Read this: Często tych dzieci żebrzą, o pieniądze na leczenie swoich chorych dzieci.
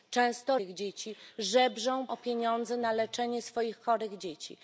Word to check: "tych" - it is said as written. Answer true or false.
true